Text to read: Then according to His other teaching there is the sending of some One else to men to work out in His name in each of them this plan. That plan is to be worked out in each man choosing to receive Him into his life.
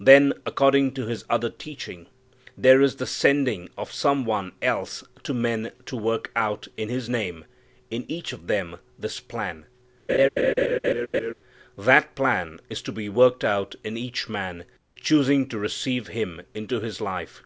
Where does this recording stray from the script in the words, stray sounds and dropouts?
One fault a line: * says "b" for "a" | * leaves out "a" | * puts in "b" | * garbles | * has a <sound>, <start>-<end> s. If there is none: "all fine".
* has a laugh, 10.1-11.3 s